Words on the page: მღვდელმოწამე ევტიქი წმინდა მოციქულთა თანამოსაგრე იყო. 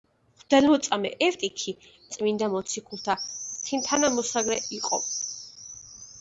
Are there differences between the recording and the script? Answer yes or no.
no